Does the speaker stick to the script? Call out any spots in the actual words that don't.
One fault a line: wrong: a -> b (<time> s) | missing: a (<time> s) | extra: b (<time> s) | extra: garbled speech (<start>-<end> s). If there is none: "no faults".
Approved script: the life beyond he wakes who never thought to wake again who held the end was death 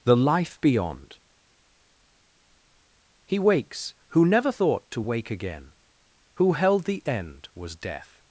no faults